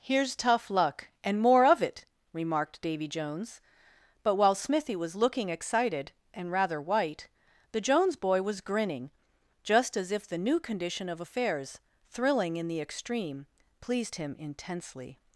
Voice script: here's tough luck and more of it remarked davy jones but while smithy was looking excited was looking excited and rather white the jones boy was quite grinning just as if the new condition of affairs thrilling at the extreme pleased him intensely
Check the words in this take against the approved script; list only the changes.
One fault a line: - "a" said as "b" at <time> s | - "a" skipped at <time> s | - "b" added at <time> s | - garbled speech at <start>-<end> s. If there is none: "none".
- "was looking excited" skipped at 6.1 s
- "quite" skipped at 8.6 s
- "at" said as "in" at 12.6 s